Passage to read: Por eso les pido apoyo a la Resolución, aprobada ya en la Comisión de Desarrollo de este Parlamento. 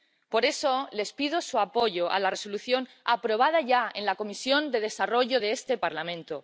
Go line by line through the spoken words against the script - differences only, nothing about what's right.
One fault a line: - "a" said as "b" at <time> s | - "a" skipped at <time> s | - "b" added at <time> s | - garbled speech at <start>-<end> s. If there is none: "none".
- "su" added at 1.4 s